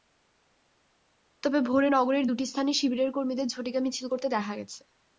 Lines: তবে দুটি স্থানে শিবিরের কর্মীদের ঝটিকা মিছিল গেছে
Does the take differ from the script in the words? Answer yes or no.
yes